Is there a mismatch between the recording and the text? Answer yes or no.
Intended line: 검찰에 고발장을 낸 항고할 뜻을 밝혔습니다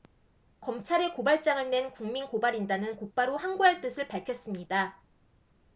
yes